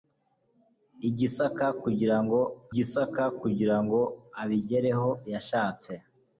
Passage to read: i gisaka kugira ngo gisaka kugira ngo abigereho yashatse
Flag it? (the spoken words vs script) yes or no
no